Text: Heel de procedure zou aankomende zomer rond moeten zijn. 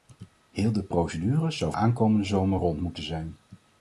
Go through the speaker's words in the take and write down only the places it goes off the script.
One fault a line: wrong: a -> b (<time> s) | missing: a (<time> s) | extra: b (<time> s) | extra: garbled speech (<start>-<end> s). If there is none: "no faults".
no faults